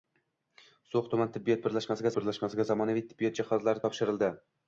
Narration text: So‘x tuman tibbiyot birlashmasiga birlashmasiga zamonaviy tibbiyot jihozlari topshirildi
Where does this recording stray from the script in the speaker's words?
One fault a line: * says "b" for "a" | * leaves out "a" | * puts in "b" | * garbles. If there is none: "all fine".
all fine